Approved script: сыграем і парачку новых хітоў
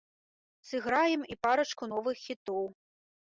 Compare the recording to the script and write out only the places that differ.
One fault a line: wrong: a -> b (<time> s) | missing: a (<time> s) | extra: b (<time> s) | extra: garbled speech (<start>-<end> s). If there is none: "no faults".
no faults